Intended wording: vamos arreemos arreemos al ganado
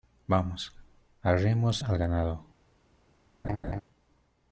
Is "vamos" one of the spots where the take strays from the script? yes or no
no